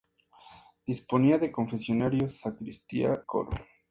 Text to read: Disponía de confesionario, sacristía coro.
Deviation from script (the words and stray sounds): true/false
false